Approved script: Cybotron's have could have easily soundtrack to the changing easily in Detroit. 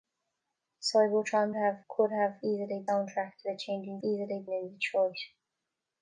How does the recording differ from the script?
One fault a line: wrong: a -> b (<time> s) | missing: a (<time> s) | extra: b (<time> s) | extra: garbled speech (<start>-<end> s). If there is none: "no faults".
no faults